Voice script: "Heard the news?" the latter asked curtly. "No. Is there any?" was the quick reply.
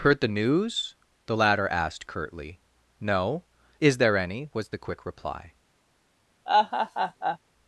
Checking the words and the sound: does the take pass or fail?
fail